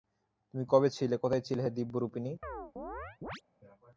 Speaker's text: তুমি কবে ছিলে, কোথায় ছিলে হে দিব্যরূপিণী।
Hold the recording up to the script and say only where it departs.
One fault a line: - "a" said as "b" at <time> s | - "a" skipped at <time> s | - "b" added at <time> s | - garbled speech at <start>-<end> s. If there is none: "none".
none